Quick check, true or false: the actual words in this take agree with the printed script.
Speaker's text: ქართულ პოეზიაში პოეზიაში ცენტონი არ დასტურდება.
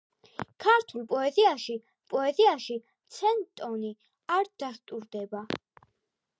true